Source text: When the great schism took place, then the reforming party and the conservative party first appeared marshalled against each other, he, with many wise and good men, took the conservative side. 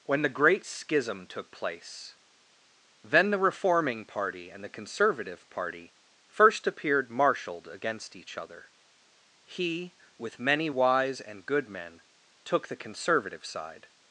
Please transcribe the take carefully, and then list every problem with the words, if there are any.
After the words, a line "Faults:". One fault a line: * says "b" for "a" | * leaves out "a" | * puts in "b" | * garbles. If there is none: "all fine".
When the great schism took place, then the reforming party and the conservative party first appeared marshalled against each other, he, with many wise and good men, took the conservative side.
Faults:
all fine